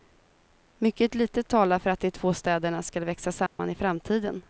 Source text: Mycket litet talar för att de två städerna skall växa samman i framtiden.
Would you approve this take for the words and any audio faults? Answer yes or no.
no